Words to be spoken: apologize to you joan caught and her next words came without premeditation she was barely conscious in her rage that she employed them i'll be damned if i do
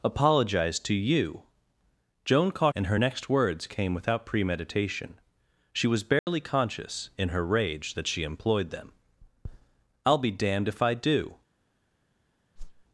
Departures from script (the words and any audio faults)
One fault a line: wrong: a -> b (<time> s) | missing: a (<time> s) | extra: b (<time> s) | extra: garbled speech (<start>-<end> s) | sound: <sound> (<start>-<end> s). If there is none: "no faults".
sound: dropout (6.2-6.3 s)
sound: whoosh (12.6-12.8 s)